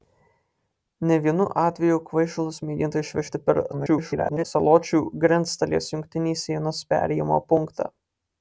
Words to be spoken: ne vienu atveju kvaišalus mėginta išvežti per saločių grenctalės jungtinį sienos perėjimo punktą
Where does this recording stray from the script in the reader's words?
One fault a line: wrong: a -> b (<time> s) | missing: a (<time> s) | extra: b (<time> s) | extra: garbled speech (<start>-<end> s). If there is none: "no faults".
extra: garbled speech (3.7-4.5 s)